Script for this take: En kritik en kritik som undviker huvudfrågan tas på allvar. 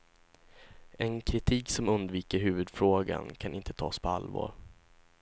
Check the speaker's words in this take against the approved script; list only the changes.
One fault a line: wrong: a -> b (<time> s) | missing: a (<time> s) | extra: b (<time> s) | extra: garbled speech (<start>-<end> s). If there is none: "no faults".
missing: en kritik (1.7 s)
extra: kan inte (3.4 s)